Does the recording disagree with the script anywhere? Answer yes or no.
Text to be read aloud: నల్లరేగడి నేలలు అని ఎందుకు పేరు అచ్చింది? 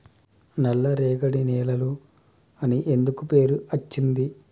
no